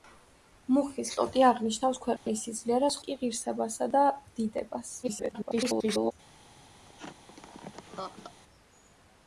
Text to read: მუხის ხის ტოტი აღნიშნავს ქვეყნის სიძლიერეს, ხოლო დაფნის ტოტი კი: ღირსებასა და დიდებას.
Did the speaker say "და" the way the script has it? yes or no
yes